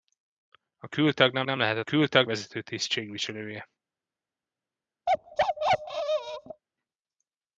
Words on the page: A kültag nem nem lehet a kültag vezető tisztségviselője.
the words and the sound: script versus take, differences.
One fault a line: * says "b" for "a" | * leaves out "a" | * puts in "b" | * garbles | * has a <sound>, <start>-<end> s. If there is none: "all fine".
* has a bark, 5.1-6.6 s